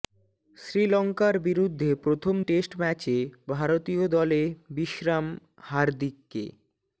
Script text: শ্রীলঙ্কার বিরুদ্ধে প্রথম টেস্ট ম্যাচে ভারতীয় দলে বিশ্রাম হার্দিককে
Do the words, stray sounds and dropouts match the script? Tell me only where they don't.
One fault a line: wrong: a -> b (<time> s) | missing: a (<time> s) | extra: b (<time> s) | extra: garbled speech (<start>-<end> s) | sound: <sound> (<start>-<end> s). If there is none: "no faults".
no faults